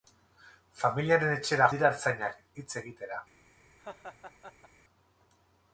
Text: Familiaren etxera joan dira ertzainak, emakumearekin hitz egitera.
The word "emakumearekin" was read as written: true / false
false